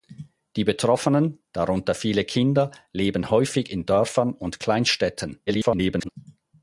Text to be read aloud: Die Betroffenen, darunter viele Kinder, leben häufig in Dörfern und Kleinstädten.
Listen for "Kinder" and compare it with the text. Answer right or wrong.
right